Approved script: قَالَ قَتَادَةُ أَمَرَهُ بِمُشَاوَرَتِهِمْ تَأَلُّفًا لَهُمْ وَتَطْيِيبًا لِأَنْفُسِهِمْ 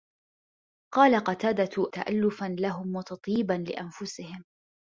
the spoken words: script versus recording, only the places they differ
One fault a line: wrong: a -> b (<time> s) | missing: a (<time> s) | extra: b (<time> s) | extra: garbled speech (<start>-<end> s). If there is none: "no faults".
missing: أَمَرَهُ بِمُشَاوَرَتِهِمْ (1.9 s)